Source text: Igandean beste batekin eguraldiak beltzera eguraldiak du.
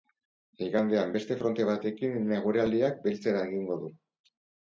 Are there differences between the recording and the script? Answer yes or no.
yes